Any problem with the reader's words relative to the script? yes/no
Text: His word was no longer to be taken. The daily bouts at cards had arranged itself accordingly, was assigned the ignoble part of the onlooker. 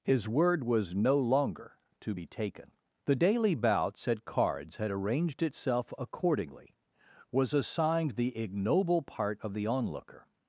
no